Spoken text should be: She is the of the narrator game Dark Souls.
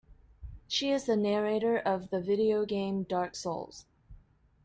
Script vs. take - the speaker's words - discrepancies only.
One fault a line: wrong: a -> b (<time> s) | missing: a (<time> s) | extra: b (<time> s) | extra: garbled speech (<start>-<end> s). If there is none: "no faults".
extra: narrator (1.1 s)
wrong: narrator -> video (2.2 s)